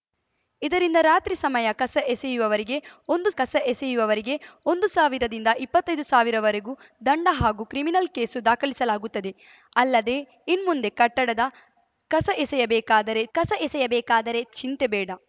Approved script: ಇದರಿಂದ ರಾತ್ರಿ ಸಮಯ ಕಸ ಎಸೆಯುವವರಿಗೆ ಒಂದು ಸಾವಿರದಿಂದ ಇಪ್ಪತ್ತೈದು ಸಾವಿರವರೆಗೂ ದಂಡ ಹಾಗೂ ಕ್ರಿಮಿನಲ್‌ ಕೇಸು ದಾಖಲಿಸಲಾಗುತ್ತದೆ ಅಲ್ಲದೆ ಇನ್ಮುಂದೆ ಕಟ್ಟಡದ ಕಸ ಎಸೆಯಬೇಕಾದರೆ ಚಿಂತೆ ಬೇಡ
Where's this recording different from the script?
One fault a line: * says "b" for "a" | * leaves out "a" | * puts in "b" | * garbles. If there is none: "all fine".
* puts in "ಕಸ ಎಸೆಯುವವರಿಗೆ ಒಂದು"
* puts in "ಕಸ ಎಸೆಯಬೇಕಾದರೆ"